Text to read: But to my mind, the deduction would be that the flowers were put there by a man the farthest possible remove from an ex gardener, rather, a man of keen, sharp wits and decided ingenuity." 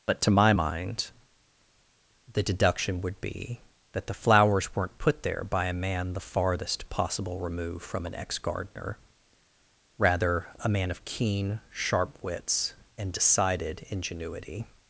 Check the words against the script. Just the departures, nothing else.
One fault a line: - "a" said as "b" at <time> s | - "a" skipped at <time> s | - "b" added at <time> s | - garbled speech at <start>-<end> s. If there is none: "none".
- "were" said as "weren't" at 4.7 s